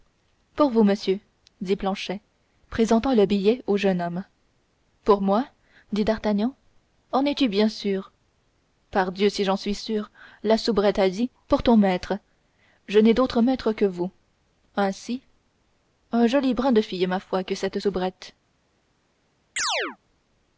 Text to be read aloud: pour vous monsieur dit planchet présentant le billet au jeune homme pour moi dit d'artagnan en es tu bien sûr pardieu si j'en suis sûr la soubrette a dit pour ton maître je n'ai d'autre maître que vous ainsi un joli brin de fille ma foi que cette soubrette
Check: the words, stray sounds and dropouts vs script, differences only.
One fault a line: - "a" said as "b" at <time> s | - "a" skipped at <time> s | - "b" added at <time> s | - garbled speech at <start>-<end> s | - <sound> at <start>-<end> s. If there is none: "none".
- chirp at 19.6-20.0 s